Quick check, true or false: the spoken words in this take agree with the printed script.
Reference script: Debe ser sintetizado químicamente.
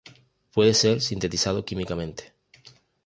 false